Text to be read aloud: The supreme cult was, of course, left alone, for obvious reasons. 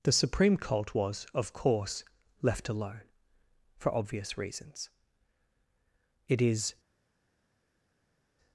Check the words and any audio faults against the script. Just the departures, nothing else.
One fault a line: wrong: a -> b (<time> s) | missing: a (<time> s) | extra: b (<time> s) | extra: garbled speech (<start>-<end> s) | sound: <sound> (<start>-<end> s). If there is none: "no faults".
extra: It is (6.3 s)